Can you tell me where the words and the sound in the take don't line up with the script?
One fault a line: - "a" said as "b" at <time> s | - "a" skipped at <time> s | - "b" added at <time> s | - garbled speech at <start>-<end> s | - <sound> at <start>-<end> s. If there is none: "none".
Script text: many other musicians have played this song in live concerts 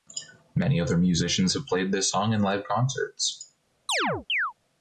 - chirp at 3.9-4.5 s